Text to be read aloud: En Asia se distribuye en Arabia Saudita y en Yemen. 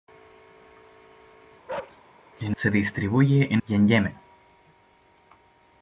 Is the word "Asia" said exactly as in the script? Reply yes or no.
no